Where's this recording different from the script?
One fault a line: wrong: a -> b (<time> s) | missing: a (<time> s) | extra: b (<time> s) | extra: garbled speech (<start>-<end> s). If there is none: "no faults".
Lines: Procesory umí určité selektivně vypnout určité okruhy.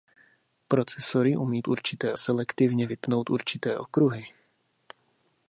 no faults